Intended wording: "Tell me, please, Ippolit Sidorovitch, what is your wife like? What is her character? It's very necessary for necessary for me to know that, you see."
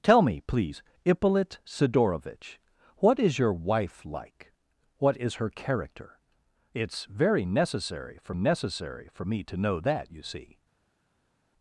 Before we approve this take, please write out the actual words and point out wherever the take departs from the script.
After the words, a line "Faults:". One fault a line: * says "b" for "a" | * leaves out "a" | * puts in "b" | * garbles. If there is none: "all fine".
"Tell me, please, Ippolit Sidorovitch, what is your wife like? What is her character? It's very necessary for necessary for me to know that, you see."
Faults:
all fine